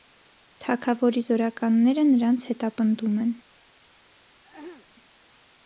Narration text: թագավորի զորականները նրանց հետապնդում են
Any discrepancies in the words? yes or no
no